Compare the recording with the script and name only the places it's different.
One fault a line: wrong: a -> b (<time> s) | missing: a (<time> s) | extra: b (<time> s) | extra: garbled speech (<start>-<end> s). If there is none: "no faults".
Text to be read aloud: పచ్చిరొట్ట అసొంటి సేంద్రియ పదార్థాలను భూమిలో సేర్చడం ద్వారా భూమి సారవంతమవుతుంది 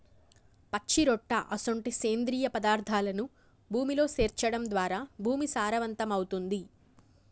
no faults